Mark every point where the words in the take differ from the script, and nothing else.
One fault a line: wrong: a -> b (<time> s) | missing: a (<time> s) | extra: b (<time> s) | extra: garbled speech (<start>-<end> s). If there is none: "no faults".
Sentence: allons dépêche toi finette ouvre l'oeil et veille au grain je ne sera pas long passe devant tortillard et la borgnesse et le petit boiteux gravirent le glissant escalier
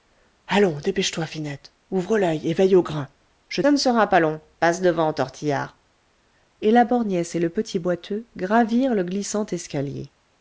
no faults